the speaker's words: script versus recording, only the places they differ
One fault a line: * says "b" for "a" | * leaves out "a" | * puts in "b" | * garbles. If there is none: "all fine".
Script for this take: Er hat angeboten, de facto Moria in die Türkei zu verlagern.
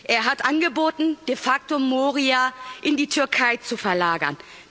all fine